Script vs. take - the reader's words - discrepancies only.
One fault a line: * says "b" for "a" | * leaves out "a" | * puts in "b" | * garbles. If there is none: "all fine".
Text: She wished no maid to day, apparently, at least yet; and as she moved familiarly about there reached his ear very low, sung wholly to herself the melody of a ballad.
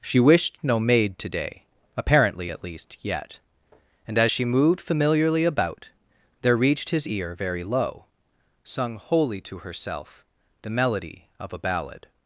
all fine